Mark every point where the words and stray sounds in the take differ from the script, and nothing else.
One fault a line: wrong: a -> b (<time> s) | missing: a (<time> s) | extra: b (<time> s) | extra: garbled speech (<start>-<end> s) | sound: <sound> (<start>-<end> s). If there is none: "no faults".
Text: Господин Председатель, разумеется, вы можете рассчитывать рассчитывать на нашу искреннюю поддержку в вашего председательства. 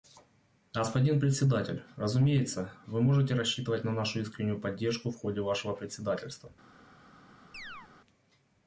missing: рассчитывать (3.8 s)
extra: ходе (5.2 s)
sound: chirp (7.5-7.9 s)